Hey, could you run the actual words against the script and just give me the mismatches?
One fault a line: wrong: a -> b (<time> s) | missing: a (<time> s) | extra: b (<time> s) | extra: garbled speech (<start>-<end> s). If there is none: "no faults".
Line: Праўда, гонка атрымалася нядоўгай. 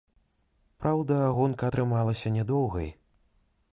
no faults